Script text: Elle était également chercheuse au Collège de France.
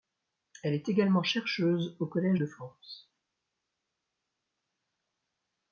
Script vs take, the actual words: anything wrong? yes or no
yes